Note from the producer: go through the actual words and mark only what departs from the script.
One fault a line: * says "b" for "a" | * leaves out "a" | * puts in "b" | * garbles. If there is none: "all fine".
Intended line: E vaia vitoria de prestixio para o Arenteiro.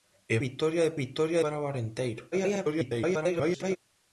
* leaves out "vaia"
* says "vitoria" for "prestixio"
* garbles